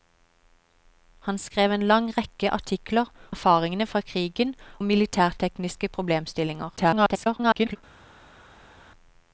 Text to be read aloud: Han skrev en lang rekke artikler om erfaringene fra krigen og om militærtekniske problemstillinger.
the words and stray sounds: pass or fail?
fail